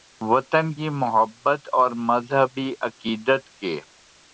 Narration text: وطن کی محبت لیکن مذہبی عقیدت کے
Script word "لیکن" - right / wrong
wrong